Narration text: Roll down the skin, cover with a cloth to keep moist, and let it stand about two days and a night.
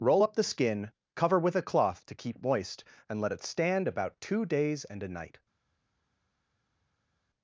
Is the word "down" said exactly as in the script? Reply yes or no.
no